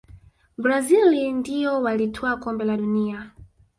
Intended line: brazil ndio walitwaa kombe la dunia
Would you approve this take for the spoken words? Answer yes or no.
yes